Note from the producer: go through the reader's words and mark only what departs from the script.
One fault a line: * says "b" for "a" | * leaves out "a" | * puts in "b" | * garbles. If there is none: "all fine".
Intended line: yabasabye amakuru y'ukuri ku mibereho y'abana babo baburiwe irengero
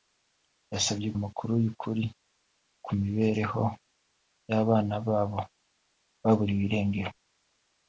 all fine